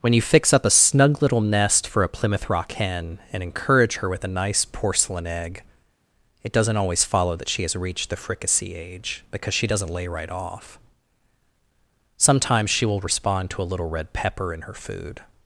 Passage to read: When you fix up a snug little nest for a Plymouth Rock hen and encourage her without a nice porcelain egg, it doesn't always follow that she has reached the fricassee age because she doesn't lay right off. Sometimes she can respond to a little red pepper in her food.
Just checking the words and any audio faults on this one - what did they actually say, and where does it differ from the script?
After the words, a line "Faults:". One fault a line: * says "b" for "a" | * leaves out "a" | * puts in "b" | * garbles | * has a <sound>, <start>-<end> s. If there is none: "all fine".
When you fix up a snug little nest for a Plymouth Rock hen and encourage her with a nice porcelain egg, it doesn't always follow that she has reached the fricassee age because she doesn't lay right off. Sometimes she will respond to a little red pepper in her food.
Faults:
* says "with" for "without"
* says "will" for "can"